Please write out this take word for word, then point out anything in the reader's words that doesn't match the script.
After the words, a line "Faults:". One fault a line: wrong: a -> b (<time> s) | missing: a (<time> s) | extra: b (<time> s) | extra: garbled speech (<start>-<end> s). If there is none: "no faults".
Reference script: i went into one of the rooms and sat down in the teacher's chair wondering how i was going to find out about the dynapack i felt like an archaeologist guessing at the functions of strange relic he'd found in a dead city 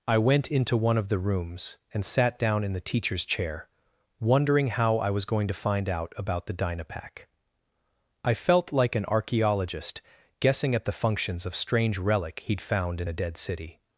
i went into one of the rooms and sat down in the teacher's chair wondering how i was going to find out about the dynapack i felt like an archaeologist guessing at the functions of strange relic he'd found in a dead city
Faults:
no faults